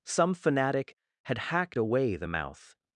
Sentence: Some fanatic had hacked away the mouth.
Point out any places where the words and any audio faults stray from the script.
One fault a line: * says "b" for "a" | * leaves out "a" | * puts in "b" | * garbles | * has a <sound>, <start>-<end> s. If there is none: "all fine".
all fine